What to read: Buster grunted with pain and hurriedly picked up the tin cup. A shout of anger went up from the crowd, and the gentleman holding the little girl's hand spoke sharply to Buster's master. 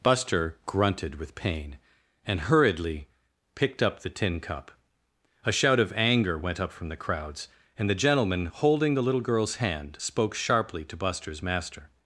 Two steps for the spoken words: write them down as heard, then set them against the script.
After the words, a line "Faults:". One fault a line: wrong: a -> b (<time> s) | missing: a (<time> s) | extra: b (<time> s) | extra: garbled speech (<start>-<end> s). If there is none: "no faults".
Buster grunted with pain and hurriedly picked up the tin cup. A shout of anger went up from the crowds, and the gentleman holding the little girl's hand spoke sharply to Buster's master.
Faults:
wrong: crowd -> crowds (7.0 s)